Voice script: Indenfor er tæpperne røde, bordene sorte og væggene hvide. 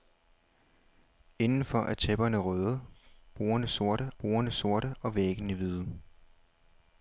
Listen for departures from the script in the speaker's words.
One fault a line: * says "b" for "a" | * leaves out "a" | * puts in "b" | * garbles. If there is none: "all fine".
* puts in "bordene sorte"